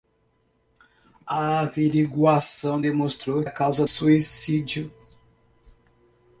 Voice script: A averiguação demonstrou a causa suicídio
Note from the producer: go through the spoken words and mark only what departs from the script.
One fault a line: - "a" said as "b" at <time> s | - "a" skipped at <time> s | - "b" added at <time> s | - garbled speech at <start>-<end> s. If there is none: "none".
none